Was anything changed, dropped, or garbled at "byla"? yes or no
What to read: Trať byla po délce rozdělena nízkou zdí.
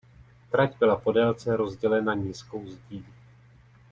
no